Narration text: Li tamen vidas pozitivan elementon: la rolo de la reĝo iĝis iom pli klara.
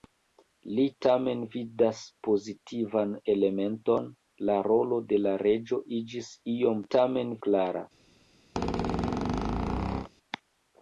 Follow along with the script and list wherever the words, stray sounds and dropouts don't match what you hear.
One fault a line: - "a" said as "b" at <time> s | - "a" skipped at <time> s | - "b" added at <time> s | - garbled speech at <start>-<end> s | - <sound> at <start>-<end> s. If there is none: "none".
- "pli" said as "tamen" at 6.9 s
- squeak at 8.5-10.1 s